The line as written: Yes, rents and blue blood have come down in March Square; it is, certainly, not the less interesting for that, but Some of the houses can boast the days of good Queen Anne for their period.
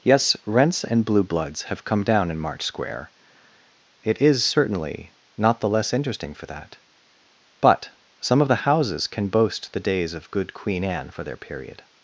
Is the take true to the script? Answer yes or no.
no